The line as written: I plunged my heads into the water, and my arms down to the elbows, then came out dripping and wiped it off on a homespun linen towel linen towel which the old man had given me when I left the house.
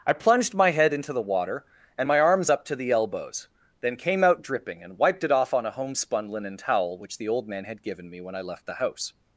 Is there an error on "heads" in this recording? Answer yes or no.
yes